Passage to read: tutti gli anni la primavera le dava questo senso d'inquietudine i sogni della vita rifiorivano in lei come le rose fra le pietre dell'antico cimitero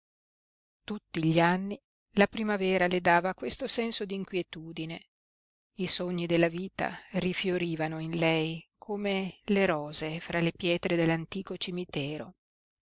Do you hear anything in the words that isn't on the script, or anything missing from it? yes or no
no